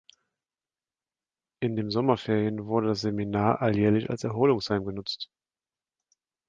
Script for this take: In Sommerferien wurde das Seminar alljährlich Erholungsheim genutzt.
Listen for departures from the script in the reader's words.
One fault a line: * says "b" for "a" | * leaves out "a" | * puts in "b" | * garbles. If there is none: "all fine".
* puts in "dem"
* puts in "als"